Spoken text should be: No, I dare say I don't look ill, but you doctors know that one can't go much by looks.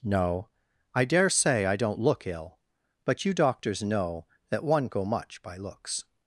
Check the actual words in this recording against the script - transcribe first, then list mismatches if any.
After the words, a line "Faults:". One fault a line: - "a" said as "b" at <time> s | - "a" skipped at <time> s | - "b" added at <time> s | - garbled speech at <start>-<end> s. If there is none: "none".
No, I dare say I don't look ill, but you doctors know that one go much by looks.
Faults:
- "can't" skipped at 4.9 s